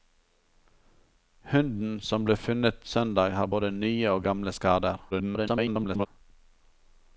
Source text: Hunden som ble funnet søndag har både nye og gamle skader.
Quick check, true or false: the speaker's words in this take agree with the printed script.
false